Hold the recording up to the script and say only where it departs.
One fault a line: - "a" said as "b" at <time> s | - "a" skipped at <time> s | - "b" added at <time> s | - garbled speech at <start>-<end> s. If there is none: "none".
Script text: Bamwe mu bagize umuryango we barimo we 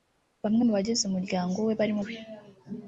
none